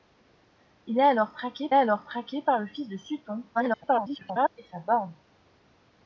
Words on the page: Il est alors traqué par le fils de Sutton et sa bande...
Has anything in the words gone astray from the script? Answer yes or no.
yes